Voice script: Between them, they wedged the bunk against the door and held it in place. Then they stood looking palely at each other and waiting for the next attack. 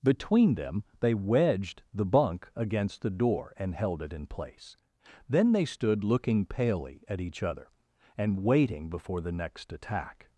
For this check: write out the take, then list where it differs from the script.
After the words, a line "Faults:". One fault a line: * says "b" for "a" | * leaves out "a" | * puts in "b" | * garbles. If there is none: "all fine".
Between them, they wedged the bunk against the door and held it in place. Then they stood looking palely at each other and waiting before the next attack.
Faults:
* says "before" for "for"